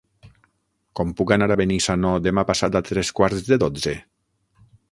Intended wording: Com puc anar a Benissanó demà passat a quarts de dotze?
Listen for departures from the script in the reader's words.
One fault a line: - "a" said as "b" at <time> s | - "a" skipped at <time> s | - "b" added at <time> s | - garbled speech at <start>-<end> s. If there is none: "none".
- "tres" added at 2.9 s